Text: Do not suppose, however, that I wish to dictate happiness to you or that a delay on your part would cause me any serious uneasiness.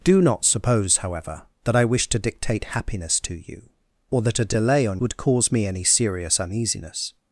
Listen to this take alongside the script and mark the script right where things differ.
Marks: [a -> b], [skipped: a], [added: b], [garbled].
Do not suppose, however, that I wish to dictate happiness to you or that a delay on [skipped: your part] would cause me any serious uneasiness.